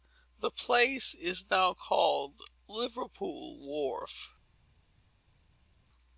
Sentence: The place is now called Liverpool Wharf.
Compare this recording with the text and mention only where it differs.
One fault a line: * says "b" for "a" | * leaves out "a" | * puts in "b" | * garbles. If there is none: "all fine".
all fine